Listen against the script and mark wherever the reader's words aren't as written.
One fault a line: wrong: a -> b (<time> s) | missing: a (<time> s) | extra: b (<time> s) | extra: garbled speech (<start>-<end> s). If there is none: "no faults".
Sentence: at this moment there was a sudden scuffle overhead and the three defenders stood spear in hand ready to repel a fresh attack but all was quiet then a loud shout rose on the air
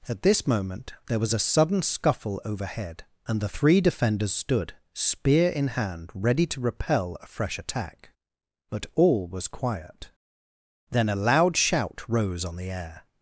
no faults